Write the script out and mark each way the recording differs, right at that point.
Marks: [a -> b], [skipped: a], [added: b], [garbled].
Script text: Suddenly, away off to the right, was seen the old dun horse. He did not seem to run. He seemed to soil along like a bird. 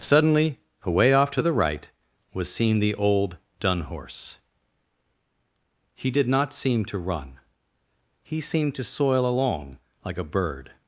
Suddenly, away off to the right, was seen the old dun horse. He did not seem to run. He seemed to soil along like a bird.